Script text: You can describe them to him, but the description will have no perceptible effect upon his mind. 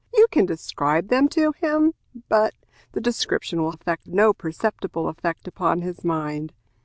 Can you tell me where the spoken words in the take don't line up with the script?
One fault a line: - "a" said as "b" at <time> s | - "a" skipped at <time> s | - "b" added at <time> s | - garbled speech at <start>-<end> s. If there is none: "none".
- "have" said as "effect" at 3.7 s